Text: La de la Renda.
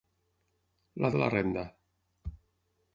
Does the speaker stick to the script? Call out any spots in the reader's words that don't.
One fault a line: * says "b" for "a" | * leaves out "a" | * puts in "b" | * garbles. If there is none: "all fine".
all fine